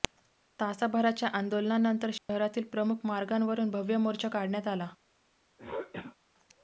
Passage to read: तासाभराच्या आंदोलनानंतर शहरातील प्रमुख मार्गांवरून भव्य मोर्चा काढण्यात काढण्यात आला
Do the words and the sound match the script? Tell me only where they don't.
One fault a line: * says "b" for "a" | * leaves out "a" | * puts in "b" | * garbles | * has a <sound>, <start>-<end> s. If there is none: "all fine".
* has a dropout, 2.2-2.3 s
* leaves out "काढण्यात"
* has a throat clearing, 5.6-6.2 s